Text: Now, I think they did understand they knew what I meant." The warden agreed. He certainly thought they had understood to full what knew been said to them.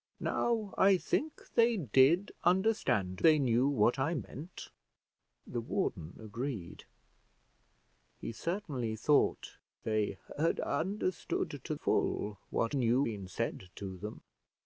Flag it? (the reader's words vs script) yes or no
no